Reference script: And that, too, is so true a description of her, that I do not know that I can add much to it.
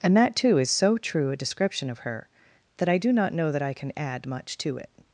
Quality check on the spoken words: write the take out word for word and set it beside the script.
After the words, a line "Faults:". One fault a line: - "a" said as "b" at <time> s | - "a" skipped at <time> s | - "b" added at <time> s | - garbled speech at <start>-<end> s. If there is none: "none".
And that, too, is so true a description of her, that I do not know that I can add much to it.
Faults:
none